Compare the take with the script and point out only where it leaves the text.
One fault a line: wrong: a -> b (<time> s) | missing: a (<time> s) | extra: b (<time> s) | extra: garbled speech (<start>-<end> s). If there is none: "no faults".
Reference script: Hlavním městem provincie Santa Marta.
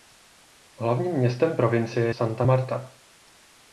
no faults